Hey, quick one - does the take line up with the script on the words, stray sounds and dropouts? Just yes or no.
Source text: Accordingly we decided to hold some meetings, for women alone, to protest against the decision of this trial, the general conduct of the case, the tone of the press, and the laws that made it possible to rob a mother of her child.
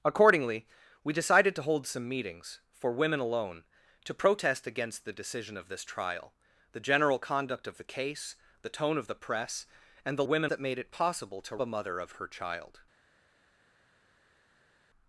no